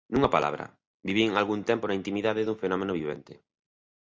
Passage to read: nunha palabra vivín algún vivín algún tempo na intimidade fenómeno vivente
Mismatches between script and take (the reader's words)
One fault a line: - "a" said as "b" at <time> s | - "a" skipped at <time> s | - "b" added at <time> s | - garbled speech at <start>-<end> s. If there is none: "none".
- "vivín algún" skipped at 1.6 s
- "dun" added at 2.4 s